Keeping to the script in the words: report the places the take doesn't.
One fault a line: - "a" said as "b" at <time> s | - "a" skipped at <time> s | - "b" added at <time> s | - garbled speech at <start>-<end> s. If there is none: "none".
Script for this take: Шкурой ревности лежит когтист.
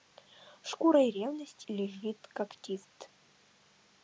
none